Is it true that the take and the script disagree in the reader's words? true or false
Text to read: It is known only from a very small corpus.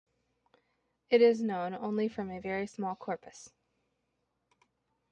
false